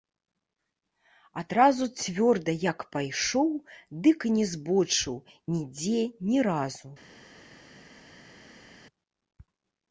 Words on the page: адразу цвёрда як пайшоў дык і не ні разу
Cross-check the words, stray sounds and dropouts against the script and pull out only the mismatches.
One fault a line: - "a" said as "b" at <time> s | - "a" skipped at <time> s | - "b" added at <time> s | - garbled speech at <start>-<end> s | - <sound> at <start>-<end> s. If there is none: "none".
- "збочыў нідзе" added at 4.6 s